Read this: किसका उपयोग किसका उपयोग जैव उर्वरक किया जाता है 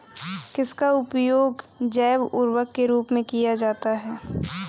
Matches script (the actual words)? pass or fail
fail